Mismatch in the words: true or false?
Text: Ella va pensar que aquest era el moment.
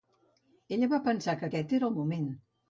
false